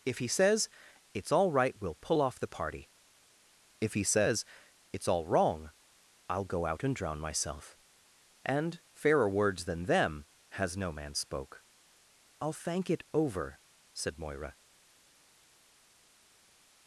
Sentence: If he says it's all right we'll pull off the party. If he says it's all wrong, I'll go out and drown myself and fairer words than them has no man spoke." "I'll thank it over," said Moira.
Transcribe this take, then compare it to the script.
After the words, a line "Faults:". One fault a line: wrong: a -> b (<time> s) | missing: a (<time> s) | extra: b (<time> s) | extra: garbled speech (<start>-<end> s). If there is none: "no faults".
If he says it's all right we'll pull off the party. If he says it's all wrong, I'll go out and drown myself and fairer words than them has no man spoke." "I'll thank it over," said Moira.
Faults:
no faults